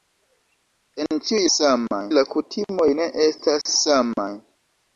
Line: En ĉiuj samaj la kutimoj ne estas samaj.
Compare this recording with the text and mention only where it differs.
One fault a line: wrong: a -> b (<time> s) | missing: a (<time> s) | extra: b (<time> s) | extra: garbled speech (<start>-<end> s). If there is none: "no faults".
no faults